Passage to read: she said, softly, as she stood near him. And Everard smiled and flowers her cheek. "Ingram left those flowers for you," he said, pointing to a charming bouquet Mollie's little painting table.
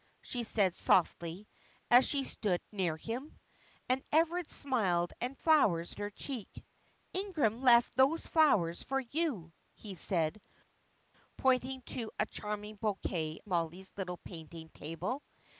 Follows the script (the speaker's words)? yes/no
yes